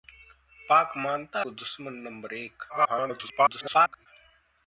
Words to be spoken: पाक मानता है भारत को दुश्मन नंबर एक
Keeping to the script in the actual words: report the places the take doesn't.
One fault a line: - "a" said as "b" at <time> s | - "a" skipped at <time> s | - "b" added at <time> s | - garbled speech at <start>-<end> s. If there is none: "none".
- "है भारत" skipped at 1.4 s
- garbled speech at 2.7-4.1 s